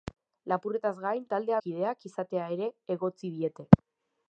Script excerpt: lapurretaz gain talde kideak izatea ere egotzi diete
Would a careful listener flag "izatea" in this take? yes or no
no